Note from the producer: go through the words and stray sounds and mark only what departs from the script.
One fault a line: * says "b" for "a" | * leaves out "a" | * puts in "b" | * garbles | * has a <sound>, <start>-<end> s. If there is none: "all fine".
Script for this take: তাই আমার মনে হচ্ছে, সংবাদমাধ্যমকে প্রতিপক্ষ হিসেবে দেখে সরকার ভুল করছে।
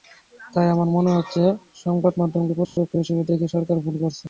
* has a dropout, 2.6-2.8 s